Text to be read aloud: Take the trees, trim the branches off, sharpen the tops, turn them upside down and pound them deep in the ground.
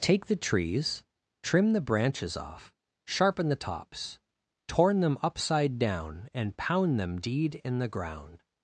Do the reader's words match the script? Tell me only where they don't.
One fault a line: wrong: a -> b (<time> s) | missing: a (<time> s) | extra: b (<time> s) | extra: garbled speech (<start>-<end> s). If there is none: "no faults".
wrong: turn -> torn (4.7 s)
wrong: deep -> deed (7.2 s)